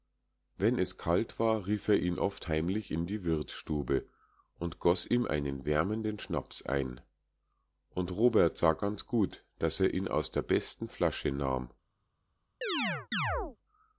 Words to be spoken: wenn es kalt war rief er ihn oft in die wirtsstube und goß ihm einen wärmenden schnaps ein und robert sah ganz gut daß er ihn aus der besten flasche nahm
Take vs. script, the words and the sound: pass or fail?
fail